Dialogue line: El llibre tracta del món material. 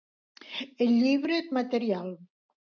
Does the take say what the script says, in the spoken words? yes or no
no